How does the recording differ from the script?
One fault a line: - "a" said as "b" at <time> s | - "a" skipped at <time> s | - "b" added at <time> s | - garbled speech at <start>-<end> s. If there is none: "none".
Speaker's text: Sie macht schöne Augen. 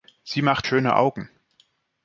none